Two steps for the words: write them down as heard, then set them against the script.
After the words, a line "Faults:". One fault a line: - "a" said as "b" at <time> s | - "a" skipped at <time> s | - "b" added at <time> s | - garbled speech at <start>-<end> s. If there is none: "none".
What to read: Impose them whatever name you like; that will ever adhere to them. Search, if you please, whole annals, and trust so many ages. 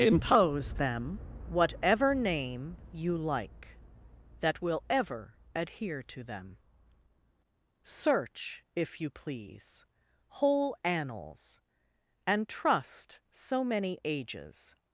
Impose them whatever name you like; that will ever adhere to them. Search, if you please, whole annals, and trust so many ages.
Faults:
none